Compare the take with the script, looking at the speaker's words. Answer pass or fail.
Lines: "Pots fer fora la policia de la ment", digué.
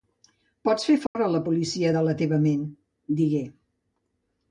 fail